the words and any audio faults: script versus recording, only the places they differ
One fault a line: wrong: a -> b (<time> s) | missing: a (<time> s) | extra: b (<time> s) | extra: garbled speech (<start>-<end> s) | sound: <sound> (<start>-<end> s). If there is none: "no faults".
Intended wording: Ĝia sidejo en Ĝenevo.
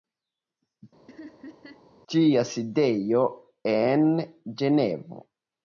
sound: laugh (1.1-1.9 s)